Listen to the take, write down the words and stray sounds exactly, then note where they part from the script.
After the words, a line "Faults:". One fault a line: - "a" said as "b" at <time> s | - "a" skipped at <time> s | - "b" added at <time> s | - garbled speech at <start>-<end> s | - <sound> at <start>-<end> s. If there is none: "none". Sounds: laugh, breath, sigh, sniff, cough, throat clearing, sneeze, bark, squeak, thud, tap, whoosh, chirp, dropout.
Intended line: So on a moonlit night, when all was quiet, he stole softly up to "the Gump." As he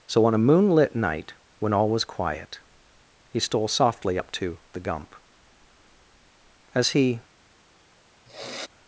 So on a moonlit night, when all was quiet, he stole softly up to "the Gump." As he
Faults:
- sniff at 8.3-8.7 s